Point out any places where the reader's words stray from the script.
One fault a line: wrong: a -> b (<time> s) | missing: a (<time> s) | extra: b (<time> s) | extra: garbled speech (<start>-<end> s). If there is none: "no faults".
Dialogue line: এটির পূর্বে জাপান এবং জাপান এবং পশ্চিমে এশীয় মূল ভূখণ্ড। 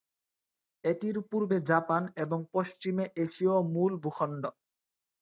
missing: জাপান এবং (2.4 s)